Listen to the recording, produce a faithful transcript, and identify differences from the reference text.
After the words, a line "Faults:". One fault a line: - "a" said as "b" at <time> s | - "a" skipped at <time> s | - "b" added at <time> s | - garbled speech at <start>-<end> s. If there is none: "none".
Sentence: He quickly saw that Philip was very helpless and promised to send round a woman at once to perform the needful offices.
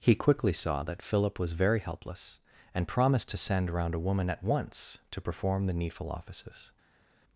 He quickly saw that Philip was very helpless and promised to send round a woman at once to perform the needful offices.
Faults:
none